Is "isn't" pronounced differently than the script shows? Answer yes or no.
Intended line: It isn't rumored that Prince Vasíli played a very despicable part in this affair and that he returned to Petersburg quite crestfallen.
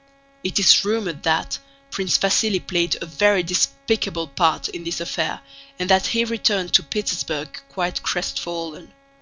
yes